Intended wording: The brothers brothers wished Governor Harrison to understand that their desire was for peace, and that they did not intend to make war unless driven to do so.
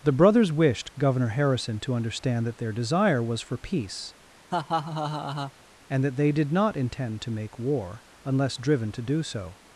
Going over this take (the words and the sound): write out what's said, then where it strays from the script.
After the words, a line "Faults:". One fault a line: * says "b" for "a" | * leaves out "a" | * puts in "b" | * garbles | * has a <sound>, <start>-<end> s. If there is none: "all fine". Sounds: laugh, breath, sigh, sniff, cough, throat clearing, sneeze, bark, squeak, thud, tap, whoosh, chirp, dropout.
The brothers wished Governor Harrison to understand that their desire was for peace, and that they did not intend to make war unless driven to do so.
Faults:
* leaves out "brothers"
* has a laugh, 4.5-5.5 s